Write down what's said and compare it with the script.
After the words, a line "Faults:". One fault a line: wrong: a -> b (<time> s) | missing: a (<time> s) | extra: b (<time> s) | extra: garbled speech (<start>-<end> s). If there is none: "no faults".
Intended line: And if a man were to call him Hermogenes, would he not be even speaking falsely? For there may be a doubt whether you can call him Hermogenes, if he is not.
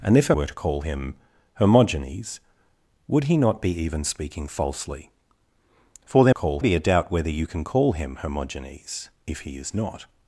And if a were to call him Hermogenes, would he not be even speaking falsely? For there call be a doubt whether you can call him Hermogenes, if he is not.
Faults:
missing: man (0.3 s)
wrong: may -> call (6.3 s)